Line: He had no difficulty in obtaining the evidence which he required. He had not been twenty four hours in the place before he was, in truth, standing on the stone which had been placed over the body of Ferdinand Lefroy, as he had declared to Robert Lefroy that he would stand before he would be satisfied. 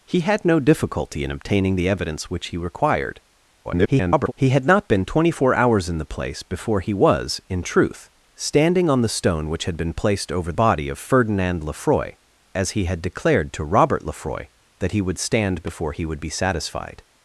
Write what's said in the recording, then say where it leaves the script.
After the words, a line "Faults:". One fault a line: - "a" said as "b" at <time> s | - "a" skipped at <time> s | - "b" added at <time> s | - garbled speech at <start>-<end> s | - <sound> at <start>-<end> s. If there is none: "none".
He had no difficulty in obtaining the evidence which he required. [garbled] He had not been twenty four hours in the place before he was, in truth, standing on the stone which had been placed over body of Ferdinand Lefroy, as he had declared to Robert Lefroy that he would stand before he would be satisfied.
Faults:
- garbled speech at 3.6-4.3 s
- "the" skipped at 10.5 s